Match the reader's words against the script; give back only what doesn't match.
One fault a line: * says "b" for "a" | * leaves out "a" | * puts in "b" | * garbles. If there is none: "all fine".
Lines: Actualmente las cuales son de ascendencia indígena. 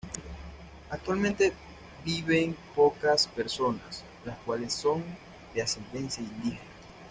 * puts in "viven pocas personas"